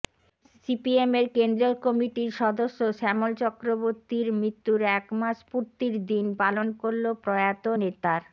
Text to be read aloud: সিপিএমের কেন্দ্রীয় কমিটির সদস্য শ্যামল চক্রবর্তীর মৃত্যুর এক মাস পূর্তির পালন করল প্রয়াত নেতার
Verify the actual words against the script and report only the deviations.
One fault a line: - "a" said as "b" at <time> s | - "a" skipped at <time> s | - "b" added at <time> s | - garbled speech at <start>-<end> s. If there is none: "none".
- "দিন" added at 6.1 s